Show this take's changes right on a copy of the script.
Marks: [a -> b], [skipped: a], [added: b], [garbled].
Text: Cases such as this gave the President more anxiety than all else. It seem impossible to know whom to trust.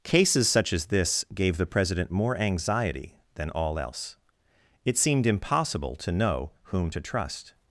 Cases such as this gave the President more anxiety than all else. It [seem -> seemed] impossible to know whom to trust.